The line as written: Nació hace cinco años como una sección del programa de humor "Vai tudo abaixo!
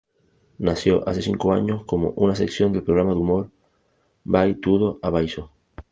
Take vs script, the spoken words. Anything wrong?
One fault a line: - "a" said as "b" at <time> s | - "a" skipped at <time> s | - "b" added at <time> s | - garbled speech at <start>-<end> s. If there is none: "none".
none